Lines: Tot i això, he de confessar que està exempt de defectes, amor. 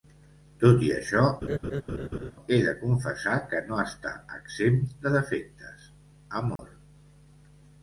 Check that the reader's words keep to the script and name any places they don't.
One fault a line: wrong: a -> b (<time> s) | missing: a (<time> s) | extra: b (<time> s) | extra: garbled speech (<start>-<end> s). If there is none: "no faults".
extra: no (3.7 s)